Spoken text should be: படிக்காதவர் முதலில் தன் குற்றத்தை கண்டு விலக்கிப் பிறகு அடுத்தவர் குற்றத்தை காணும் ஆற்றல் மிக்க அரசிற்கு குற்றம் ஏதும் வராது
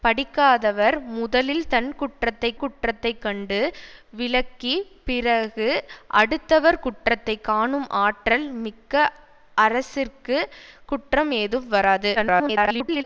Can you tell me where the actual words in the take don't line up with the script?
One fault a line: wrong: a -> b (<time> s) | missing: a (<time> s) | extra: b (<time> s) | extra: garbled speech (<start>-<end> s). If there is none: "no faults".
extra: குற்றத்தை (2.6 s)
extra: garbled speech (12.1-13.0 s)